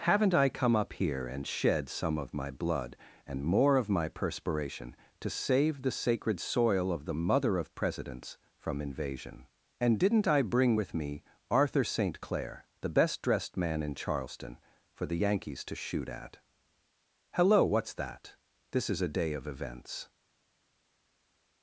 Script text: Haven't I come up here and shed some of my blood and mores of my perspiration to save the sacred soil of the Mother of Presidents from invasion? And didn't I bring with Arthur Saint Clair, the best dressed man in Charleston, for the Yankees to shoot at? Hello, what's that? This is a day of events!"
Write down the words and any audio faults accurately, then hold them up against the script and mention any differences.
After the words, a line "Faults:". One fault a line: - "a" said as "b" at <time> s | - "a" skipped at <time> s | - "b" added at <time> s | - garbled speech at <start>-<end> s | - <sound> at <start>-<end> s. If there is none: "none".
Haven't I come up here and shed some of my blood and more of my perspiration to save the sacred soil of the Mother of Presidents from invasion? And didn't I bring with me Arthur Saint Clair, the best dressed man in Charleston, for the Yankees to shoot at? Hello, what's that? This is a day of events!"
Faults:
- "mores" said as "more" at 3.4 s
- "me" added at 10.9 s